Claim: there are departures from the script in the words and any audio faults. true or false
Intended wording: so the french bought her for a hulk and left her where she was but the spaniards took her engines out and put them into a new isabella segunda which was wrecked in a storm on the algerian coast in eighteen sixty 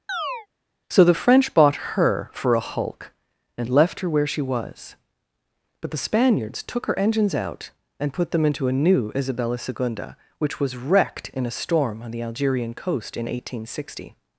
true